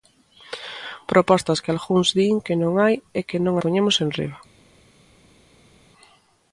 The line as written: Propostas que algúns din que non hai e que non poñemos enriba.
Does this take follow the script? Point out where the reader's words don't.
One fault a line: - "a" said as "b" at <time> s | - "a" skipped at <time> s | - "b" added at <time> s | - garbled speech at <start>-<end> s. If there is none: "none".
none